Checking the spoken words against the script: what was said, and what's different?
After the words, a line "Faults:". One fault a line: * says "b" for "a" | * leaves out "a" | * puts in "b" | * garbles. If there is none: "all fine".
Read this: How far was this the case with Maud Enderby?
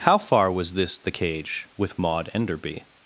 How far was this the cage with Maud Enderby?
Faults:
* says "cage" for "case"